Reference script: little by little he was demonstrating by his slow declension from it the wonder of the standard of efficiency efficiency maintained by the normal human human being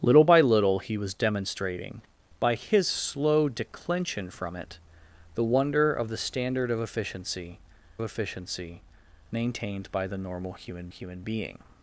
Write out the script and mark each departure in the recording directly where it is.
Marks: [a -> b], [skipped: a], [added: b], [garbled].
little by little he was demonstrating by his slow declension from it the wonder of the standard of efficiency efficiency maintained by the normal human human being